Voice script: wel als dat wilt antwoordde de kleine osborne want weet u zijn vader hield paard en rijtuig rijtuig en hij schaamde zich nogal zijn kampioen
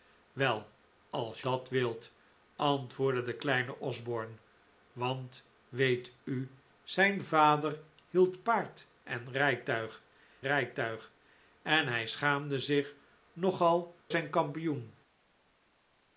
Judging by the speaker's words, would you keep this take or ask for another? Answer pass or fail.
pass